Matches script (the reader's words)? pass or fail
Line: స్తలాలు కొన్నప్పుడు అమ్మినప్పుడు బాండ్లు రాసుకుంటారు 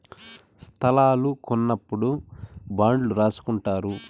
fail